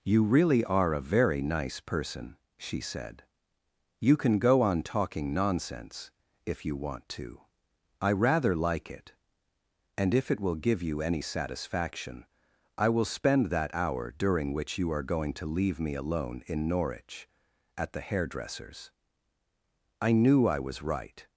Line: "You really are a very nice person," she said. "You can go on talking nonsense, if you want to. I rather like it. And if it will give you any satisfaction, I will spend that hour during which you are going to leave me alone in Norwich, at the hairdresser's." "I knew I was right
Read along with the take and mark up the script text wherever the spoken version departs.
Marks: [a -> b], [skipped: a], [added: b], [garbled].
"You really are a very nice person," she said. "You can go on talking nonsense, if you want to. I rather like it. And if it will give you any satisfaction, I will spend that hour during which you are going to leave me alone in Norwich, at the hairdresser's." "I knew I was right